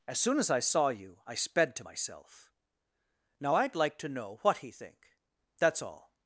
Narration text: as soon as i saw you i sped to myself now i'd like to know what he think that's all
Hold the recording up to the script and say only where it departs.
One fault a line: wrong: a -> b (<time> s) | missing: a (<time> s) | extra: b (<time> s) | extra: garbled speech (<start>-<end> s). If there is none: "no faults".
no faults